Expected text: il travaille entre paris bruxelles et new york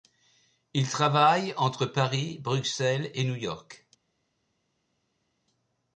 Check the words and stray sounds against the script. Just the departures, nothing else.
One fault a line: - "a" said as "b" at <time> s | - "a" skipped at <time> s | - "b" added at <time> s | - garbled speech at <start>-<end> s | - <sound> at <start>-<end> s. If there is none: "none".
none